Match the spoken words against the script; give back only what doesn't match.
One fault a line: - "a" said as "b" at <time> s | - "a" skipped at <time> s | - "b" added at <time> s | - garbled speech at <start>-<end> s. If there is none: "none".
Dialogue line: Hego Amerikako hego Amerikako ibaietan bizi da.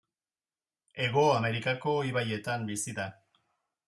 - "hego Amerikako" skipped at 1.9 s